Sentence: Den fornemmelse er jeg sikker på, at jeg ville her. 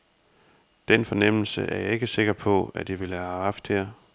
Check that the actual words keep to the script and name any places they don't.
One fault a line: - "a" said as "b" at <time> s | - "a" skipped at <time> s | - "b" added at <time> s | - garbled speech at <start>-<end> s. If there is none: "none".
- "ikke" added at 1.9 s
- "have haft" added at 3.2 s